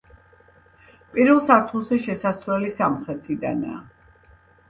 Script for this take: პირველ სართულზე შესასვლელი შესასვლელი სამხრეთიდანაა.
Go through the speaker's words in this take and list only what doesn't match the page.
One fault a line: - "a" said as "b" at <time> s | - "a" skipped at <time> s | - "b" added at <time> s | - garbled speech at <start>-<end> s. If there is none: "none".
- "შესასვლელი" skipped at 2.7 s